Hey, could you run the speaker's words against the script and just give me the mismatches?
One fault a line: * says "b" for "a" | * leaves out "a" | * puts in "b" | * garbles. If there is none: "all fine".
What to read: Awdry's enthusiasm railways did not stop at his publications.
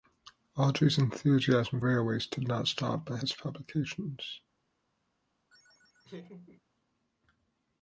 all fine